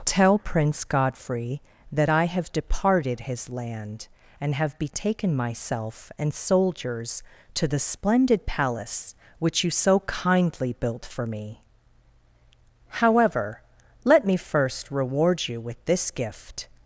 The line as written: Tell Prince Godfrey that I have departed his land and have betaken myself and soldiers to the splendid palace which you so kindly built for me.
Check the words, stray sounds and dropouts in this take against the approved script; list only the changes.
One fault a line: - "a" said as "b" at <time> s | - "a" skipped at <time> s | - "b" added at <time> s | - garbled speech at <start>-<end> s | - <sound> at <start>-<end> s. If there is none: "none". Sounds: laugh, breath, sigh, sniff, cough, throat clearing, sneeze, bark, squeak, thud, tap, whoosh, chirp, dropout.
- "However let me first reward you with this gift" added at 12.9 s